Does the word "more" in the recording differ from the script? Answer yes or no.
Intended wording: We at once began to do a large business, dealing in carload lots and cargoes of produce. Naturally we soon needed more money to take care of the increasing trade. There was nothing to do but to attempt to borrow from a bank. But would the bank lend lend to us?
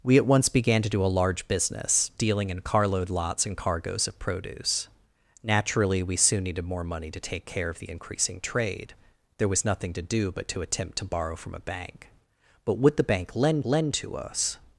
no